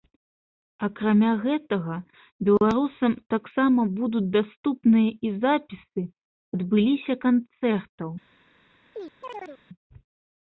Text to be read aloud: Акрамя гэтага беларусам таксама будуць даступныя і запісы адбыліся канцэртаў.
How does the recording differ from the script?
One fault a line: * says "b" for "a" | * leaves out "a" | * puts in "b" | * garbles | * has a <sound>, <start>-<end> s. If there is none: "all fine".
* has a chirp, 8.9-9.6 s